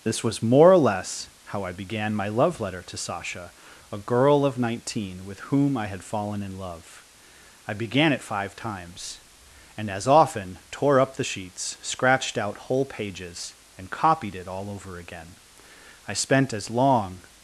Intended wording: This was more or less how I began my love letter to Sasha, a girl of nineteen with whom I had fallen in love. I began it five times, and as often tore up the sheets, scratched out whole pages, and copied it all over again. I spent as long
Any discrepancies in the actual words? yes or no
no